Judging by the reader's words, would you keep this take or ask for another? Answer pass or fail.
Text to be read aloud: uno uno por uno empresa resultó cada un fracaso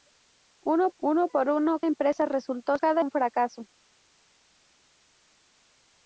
pass